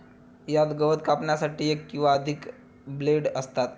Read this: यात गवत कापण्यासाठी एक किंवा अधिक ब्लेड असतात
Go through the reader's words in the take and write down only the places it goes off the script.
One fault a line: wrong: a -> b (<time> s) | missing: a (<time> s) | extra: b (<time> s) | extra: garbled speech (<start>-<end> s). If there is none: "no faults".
no faults